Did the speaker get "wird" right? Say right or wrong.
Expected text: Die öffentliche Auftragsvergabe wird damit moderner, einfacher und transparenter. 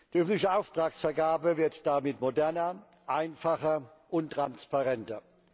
right